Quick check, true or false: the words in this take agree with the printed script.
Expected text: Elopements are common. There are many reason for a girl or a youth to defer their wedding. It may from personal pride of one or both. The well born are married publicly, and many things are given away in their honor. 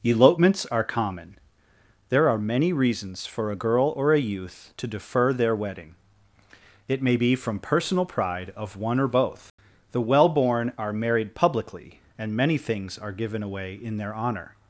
false